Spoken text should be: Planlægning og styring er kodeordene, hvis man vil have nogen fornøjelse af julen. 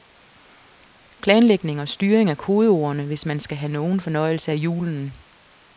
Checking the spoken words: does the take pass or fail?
fail